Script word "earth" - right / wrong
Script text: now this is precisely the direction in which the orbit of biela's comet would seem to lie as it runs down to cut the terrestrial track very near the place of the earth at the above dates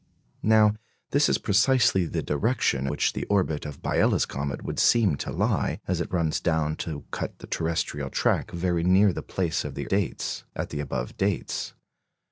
wrong